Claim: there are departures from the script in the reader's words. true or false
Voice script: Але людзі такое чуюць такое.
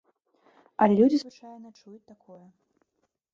true